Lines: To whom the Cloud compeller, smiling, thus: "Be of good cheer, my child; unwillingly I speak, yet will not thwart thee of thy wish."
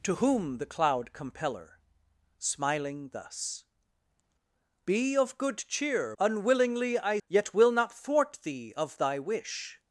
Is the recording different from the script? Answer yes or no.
yes